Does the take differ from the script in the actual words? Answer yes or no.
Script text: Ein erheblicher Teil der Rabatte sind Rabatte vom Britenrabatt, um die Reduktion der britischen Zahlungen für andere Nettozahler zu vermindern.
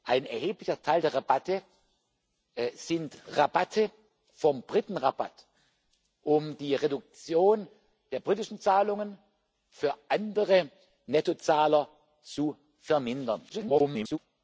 yes